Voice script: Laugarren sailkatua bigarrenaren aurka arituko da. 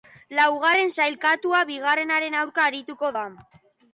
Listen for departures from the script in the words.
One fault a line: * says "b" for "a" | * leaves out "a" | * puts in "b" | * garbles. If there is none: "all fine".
all fine